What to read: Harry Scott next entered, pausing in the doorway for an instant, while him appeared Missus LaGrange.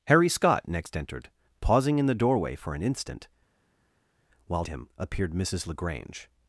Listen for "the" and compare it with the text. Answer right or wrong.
right